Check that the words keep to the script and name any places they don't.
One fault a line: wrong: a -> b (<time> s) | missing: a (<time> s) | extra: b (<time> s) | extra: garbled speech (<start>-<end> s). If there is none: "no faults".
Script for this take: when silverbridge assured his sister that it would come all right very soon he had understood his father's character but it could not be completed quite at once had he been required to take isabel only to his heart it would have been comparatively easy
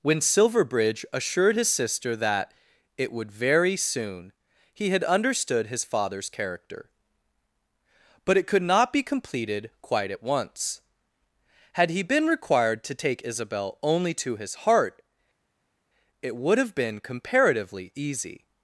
missing: come all right (3.3 s)